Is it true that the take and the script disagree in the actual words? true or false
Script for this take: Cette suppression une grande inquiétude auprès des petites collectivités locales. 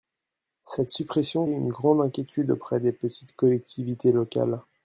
false